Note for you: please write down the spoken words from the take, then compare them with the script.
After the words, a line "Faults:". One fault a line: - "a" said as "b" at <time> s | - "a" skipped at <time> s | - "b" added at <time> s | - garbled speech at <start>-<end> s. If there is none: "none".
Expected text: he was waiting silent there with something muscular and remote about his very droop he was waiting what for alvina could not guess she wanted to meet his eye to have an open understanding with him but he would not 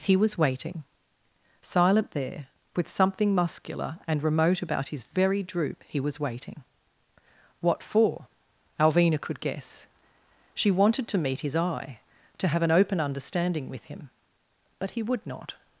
he was waiting silent there with something muscular and remote about his very droop he was waiting what for alvina could guess she wanted to meet his eye to have an open understanding with him but he would not
Faults:
- "not" skipped at 9.4 s